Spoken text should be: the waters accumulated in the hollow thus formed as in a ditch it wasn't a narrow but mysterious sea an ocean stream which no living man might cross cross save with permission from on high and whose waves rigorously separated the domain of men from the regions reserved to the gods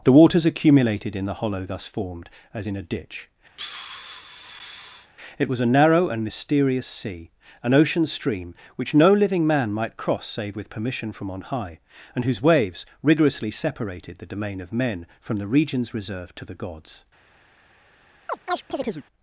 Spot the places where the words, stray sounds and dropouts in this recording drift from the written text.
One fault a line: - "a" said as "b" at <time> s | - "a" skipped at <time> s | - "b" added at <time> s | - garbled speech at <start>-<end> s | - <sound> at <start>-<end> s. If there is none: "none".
- sigh at 3.6-5.1 s
- "wasn't" said as "was" at 5.5 s
- "but" said as "and" at 6.1 s
- "cross" skipped at 10.2 s
- chirp at 18.3-19.1 s